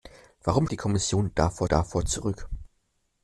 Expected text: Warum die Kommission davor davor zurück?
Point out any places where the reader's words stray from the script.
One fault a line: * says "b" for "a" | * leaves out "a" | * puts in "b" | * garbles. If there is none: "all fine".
all fine